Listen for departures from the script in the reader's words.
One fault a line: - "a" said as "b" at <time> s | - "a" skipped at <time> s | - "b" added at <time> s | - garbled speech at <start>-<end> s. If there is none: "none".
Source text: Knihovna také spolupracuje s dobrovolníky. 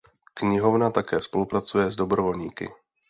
none